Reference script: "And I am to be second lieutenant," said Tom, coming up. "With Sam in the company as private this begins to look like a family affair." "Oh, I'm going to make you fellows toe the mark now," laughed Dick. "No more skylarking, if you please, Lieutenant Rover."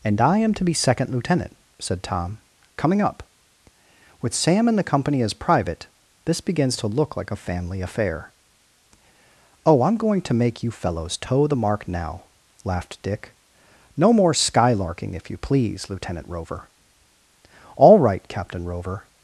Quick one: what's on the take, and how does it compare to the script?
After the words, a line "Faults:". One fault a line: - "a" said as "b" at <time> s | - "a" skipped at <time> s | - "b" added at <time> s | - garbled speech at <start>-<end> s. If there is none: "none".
"And I am to be second lieutenant," said Tom, coming up. "With Sam in the company as private this begins to look like a family affair." "Oh, I'm going to make you fellows toe the mark now," laughed Dick. "No more skylarking, if you please, Lieutenant Rover." "All right, Captain Rover
Faults:
- "All right Captain Rover" added at 17.8 s